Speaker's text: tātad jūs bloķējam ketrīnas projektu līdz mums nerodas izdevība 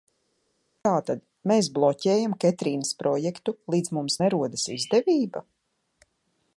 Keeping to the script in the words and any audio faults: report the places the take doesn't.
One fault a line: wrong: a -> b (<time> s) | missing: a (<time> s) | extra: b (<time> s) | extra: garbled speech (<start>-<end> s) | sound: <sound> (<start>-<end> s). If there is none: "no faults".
wrong: jūs -> mēs (1.5 s)